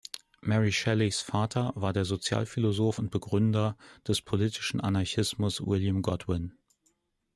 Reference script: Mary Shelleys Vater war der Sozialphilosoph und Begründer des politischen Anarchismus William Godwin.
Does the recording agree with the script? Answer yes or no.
yes